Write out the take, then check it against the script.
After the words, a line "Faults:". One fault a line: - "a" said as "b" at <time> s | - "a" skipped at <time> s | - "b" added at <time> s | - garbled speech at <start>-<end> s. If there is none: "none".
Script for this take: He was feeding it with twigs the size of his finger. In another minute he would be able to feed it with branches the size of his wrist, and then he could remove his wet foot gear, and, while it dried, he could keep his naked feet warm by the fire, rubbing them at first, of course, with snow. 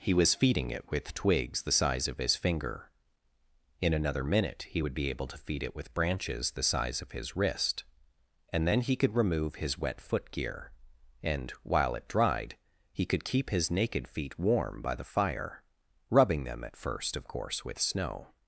He was feeding it with twigs the size of his finger. In another minute he would be able to feed it with branches the size of his wrist, and then he could remove his wet foot gear, and, while it dried, he could keep his naked feet warm by the fire, rubbing them at first, of course, with snow.
Faults:
none